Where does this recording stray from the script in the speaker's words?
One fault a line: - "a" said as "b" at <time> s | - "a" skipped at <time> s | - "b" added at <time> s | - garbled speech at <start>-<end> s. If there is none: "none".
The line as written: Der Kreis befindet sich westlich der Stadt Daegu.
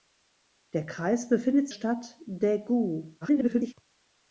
- "sich westlich der" skipped at 1.7 s
- garbled speech at 3.2-3.7 s